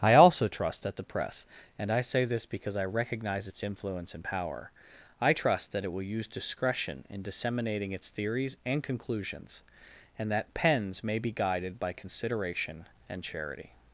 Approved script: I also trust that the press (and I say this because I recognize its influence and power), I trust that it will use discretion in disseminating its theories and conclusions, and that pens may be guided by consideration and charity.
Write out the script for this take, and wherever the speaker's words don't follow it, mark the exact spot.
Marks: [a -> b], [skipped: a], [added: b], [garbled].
I also trust that the press (and I say this because I recognize its influence and power), I trust that it will use discretion in disseminating its theories and conclusions, and that pens may be guided by consideration and charity.